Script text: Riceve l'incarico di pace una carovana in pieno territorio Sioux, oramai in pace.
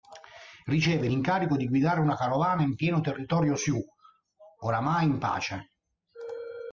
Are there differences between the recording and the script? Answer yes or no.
yes